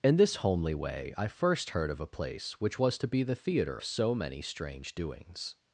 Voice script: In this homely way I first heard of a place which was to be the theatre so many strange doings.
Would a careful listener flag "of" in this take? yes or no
no